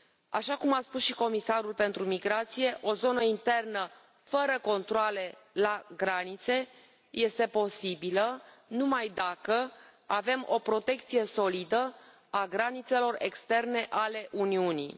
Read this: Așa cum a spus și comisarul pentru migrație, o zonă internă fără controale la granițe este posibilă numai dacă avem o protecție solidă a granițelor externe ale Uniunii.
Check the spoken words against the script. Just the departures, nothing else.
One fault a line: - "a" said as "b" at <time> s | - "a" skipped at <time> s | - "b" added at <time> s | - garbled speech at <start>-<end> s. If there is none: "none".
none